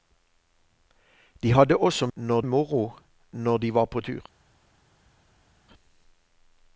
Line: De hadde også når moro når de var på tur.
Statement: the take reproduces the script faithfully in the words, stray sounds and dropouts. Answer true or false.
true